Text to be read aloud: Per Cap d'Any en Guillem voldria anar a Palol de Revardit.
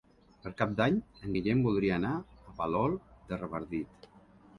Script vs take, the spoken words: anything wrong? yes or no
no